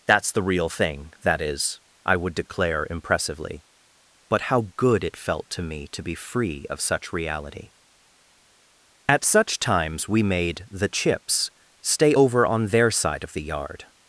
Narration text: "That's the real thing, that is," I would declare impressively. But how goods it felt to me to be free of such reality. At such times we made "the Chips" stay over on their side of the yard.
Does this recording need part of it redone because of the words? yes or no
yes